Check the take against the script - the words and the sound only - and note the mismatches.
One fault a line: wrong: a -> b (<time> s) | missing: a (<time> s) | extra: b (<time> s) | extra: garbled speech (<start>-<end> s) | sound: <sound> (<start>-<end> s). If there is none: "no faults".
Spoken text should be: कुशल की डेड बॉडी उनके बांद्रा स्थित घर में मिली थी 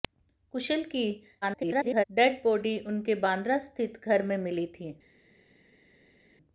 extra: garbled speech (1.4-2.0 s)